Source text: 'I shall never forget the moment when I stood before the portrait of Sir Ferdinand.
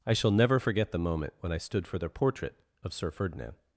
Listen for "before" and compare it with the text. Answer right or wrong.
wrong